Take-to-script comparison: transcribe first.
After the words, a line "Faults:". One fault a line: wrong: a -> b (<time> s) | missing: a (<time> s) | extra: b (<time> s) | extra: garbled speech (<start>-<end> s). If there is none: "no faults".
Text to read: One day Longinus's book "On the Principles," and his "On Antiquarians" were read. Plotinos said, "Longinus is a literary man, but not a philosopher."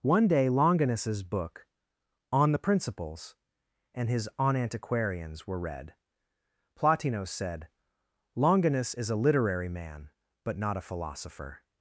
One day Longinus's book "On the Principles," and his "On Antiquarians" were read. Plotinos said, "Longinus is a literary man, but not a philosopher."
Faults:
no faults